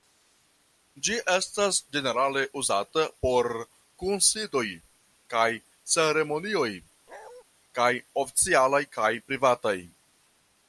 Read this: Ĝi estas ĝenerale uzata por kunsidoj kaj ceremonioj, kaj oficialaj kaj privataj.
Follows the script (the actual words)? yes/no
yes